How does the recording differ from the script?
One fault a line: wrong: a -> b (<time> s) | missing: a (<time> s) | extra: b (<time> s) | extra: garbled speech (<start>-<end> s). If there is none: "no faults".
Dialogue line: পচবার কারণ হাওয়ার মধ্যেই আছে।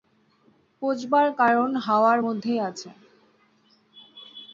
no faults